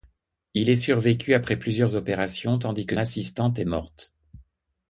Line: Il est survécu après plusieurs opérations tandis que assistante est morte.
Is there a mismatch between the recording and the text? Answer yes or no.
no